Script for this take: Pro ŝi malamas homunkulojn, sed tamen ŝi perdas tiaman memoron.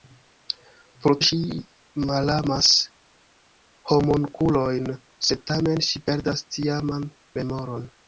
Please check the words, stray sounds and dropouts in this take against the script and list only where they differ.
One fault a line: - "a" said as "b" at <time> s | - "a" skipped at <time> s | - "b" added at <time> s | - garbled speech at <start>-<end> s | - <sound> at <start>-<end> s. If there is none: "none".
none